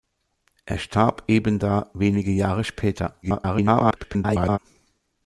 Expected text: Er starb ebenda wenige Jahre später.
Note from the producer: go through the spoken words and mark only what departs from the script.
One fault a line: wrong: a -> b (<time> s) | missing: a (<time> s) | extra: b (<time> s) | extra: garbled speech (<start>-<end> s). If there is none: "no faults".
extra: garbled speech (3.2-4.6 s)